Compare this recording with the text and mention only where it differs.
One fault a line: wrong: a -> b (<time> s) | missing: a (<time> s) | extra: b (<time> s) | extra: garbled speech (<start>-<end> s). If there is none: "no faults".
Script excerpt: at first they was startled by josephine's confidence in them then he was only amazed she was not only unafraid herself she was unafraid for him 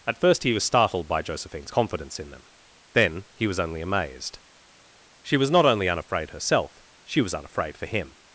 wrong: they -> he (0.4 s)